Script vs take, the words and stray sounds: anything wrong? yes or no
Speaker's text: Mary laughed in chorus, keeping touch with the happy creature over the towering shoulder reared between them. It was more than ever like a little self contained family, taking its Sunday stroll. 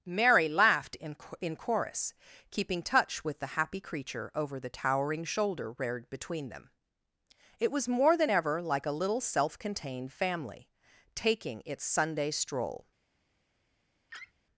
yes